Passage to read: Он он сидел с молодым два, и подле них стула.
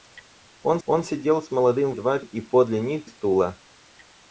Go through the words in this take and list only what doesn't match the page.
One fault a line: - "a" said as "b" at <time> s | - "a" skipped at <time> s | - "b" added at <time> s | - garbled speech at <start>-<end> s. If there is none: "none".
none